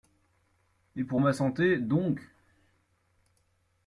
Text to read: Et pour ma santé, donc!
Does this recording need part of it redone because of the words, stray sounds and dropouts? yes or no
no